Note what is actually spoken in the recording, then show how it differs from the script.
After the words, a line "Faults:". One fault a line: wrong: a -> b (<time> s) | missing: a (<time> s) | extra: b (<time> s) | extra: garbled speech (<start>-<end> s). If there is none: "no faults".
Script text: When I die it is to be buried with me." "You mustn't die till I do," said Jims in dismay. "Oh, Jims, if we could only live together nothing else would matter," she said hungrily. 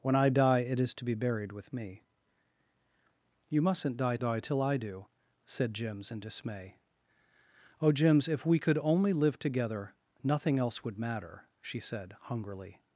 When I die it is to be buried with me." "You mustn't die die till I do," said Jims in dismay. "Oh, Jims, if we could only live together nothing else would matter," she said hungrily.
Faults:
extra: die (4.2 s)